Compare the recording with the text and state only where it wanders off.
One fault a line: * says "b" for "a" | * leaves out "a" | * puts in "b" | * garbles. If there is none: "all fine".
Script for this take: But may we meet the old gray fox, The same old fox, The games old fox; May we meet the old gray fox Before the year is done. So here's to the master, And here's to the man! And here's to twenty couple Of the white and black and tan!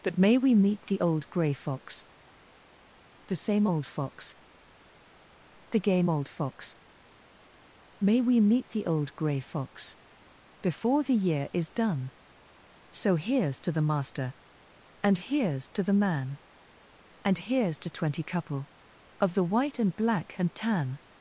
* says "game" for "games"